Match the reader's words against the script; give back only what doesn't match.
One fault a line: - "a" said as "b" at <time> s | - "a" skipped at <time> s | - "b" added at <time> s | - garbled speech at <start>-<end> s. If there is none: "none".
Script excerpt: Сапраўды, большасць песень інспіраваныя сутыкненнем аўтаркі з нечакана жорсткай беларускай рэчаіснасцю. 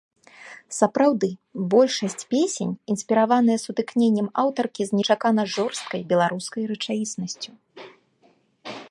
none